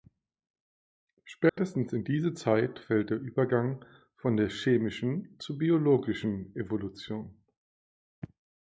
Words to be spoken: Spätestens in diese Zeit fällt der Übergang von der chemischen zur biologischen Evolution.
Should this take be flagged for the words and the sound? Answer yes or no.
yes